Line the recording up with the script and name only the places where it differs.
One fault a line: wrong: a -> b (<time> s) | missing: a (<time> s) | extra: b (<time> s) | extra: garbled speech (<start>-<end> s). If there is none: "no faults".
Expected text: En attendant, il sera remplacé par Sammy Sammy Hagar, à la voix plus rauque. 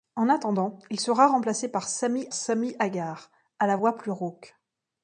no faults